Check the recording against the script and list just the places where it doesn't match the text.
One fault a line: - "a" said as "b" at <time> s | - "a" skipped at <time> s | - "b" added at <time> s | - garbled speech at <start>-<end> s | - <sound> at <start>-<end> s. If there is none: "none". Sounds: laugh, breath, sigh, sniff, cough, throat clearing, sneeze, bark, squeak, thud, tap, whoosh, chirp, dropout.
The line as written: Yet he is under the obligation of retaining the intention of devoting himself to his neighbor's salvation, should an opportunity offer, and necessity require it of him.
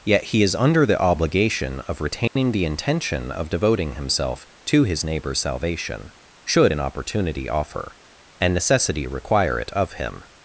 - dropout at 2.3-2.4 s